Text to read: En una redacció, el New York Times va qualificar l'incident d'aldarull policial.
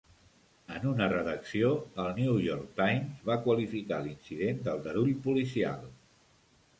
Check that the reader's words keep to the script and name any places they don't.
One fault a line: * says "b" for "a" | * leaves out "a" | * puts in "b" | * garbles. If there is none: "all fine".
all fine